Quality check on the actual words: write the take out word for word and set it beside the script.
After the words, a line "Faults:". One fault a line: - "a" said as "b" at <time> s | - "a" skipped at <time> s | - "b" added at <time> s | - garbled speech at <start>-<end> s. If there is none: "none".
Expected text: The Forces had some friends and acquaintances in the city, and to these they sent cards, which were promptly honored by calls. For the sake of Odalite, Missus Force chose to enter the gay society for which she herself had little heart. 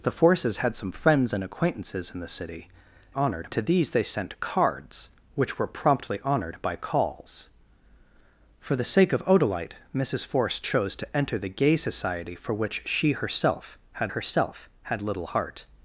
The Forces had some friends and acquaintances in the city, honored to these they sent cards, which were promptly honored by calls. For the sake of Odalite, Missus Force chose to enter the gay society for which she herself had herself had little heart.
Faults:
- "and" said as "honored" at 3.1 s
- "herself had" added at 14.1 s